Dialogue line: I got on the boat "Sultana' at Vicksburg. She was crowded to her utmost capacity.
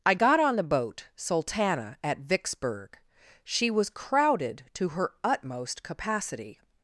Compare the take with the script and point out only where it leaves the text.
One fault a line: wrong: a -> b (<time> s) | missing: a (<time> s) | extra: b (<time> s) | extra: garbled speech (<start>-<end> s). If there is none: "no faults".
no faults